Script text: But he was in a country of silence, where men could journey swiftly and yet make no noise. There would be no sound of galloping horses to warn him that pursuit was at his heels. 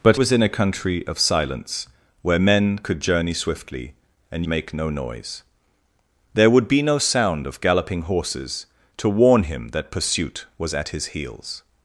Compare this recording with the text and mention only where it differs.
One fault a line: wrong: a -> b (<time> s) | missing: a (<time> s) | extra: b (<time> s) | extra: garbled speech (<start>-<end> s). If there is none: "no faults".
missing: he (0.2 s)
missing: yet (4.4 s)